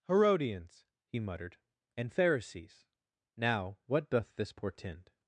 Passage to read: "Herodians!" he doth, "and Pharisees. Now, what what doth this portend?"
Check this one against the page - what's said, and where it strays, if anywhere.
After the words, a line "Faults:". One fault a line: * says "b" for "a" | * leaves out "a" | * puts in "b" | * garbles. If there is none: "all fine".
"Herodians!" he muttered, "and Pharisees. Now, what doth this portend?"
Faults:
* says "muttered" for "doth"
* leaves out "what"